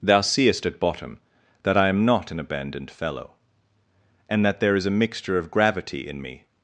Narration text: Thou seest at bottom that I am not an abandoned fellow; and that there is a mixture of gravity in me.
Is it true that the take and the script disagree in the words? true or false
false